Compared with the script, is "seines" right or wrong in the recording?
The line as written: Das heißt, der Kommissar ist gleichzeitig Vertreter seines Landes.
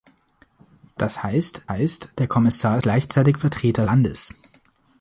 wrong